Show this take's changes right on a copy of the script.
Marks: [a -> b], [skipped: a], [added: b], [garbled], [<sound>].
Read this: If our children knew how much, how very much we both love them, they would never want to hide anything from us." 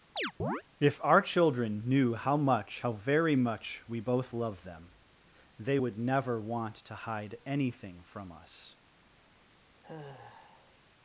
[chirp] If our children knew how much, how very much we both love them, they would never want to hide anything from us." [sigh]